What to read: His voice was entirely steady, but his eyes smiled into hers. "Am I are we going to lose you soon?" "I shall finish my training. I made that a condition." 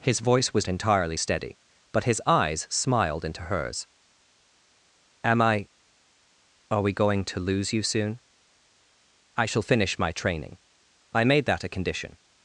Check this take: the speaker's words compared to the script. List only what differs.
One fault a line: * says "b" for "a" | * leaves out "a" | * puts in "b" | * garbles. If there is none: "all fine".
all fine